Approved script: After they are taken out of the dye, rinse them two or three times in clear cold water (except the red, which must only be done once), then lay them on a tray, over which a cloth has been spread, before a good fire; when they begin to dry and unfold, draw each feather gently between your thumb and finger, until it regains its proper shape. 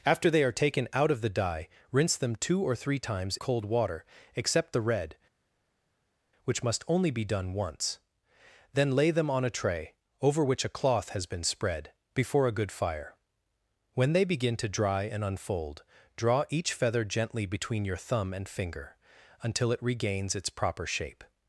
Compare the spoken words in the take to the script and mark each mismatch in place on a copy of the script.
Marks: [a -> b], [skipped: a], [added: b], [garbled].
After they are taken out of the dye, rinse them two or three times [skipped: in clear] cold water (except the red, which must only be done once), then lay them on a tray, over which a cloth has been spread, before a good fire; when they begin to dry and unfold, draw each feather gently between your thumb and finger, until it regains its proper shape.